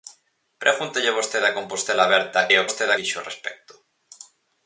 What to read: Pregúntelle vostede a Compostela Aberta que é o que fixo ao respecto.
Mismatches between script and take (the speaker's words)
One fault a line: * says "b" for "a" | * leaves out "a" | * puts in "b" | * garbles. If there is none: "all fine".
* leaves out "que"
* says "vostede" for "que"